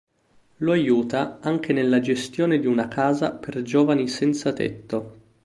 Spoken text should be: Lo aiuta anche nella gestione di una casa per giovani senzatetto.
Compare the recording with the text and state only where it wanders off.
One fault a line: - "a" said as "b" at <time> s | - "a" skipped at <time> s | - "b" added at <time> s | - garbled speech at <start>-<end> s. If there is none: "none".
none